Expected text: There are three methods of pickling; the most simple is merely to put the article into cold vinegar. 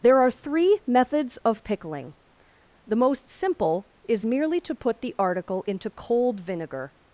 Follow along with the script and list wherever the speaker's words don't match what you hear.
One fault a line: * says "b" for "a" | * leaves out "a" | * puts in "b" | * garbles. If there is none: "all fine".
all fine